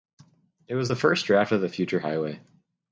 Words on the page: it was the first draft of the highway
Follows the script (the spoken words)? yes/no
no